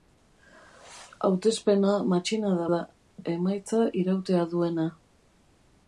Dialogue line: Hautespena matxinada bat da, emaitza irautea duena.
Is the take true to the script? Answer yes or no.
no